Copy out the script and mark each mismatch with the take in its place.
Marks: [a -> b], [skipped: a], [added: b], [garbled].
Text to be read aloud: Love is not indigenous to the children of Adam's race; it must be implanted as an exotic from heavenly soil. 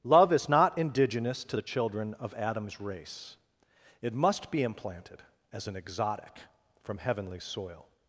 Love is not indigenous to the children of Adam's race; it must be implanted as an exotic from heavenly soil.